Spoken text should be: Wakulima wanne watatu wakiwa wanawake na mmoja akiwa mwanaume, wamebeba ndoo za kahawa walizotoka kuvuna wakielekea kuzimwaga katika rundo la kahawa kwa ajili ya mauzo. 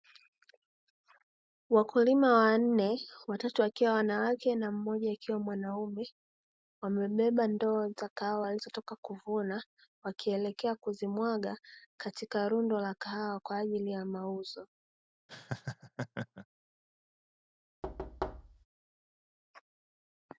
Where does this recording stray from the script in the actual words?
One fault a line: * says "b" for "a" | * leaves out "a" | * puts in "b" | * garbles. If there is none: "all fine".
all fine